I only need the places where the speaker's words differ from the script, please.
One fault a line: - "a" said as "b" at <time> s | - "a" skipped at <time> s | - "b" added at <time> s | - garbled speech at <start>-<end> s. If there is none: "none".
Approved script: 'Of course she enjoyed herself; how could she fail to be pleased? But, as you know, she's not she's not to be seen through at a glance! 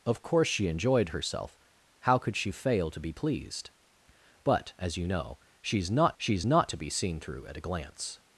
none